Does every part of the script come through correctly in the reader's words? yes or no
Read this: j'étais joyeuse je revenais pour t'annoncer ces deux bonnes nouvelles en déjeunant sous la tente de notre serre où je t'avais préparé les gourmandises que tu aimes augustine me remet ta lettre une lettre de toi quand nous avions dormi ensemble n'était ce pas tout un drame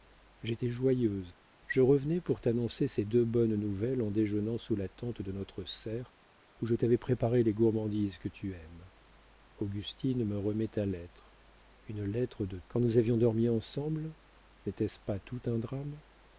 no